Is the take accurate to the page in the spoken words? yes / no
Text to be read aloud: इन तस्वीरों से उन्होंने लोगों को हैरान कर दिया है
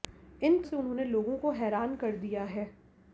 no